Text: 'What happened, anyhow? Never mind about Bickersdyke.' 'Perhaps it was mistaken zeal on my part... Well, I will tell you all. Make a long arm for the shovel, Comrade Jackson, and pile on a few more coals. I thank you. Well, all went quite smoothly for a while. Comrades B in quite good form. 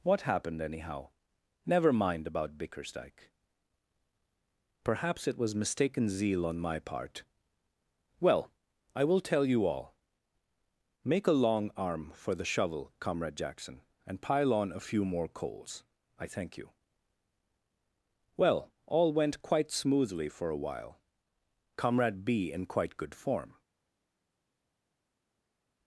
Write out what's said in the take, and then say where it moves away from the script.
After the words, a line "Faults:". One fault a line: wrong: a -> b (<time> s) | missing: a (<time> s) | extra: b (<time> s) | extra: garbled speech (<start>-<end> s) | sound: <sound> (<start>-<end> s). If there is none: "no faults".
'What happened, anyhow? Never mind about Bickersdyke.' 'Perhaps it was mistaken zeal on my part... Well, I will tell you all. Make a long arm for the shovel, Comrade Jackson, and pile on a few more coals. I thank you. Well, all went quite smoothly for a while. Comrade B in quite good form.
Faults:
wrong: Comrades -> Comrade (21.8 s)